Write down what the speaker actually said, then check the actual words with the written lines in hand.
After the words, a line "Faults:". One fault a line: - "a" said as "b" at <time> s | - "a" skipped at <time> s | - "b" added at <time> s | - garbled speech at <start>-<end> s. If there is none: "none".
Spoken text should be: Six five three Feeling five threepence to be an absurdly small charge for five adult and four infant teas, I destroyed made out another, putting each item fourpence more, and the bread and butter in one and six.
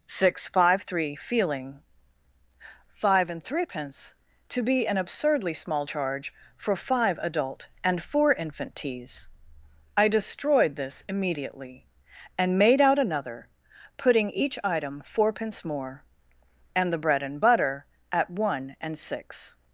Six five three Feeling five and threepence to be an absurdly small charge for five adult and four infant teas, I destroyed this immediately, and made out another, putting each item fourpence more, and the bread and butter at one and six.
Faults:
- "and" added at 3.3 s
- "this immediately and" added at 10.8 s
- "in" said as "at" at 18.1 s